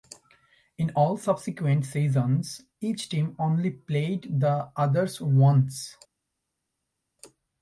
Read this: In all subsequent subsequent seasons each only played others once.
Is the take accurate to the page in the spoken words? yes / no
no